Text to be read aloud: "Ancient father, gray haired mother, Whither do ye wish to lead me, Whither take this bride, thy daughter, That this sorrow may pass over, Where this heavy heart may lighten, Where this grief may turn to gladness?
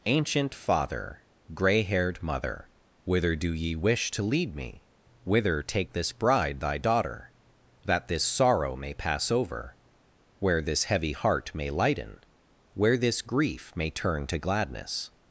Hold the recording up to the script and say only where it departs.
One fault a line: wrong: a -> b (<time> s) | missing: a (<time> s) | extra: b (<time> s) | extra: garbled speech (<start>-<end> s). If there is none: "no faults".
no faults